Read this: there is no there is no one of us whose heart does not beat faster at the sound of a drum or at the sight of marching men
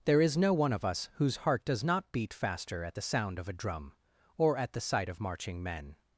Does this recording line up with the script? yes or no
no